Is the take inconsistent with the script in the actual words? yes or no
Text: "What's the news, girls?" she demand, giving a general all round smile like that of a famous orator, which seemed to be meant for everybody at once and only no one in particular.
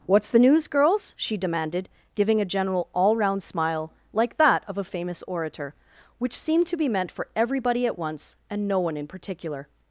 yes